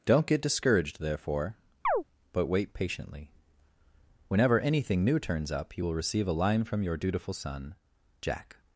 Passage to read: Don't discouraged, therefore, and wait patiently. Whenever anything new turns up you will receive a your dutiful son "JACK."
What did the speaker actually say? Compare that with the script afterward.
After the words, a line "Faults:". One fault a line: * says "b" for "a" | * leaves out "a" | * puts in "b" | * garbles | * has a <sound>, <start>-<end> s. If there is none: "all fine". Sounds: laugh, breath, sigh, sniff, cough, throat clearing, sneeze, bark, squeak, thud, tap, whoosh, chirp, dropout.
Don't get discouraged, therefore, but wait patiently. Whenever anything new turns up you will receive a line from your dutiful son "JACK."
Faults:
* puts in "get"
* has a chirp, 1.8-2.0 s
* says "but" for "and"
* puts in "line from"